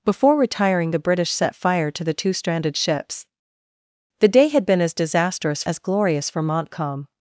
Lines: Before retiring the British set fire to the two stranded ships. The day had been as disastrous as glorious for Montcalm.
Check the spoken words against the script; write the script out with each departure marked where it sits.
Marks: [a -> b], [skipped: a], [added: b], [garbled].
Before retiring the British set fire to the two stranded ships. The day had been as disastrous as glorious for Montcalm.